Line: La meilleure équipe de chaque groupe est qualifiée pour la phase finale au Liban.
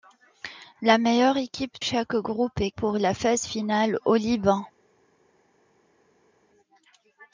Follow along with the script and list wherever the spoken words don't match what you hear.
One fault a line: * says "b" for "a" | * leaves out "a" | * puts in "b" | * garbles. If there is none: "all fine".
* leaves out "de"
* leaves out "qualifiée"